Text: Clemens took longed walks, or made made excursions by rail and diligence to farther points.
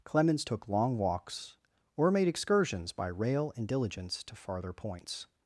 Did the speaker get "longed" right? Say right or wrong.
wrong